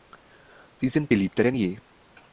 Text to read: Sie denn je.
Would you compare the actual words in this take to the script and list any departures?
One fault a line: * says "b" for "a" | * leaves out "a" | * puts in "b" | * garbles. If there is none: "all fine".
* puts in "sind beliebter"